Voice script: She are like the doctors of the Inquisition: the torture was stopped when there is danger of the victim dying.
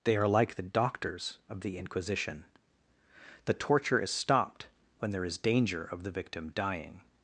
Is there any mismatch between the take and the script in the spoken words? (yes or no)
yes